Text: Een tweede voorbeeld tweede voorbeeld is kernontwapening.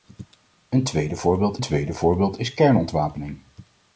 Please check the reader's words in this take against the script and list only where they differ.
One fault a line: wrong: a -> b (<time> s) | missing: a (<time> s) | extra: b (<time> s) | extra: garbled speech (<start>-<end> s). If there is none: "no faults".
no faults